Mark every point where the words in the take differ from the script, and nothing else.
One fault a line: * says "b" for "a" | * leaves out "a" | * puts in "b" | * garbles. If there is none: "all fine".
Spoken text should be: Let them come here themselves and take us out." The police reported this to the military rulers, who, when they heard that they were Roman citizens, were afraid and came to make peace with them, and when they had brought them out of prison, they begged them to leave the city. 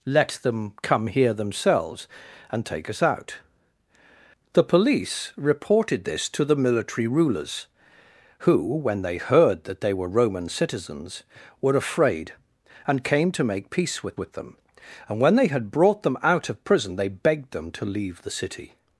* puts in "with"